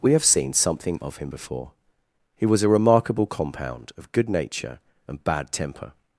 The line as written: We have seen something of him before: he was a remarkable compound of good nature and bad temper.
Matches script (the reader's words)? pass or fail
pass